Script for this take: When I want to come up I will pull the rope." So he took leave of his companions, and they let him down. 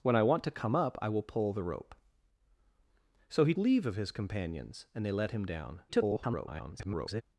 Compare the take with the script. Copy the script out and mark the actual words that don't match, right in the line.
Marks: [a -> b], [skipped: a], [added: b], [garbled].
When I want to come up I will pull the rope." So he [skipped: took] leave of his companions, and they let him down. [garbled]